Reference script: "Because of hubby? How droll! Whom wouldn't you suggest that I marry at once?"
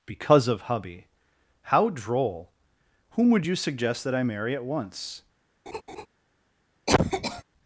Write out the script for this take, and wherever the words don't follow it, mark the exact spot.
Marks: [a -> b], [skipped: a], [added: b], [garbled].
"Because of hubby? How droll! Whom [wouldn't -> would] you suggest that I marry at once?"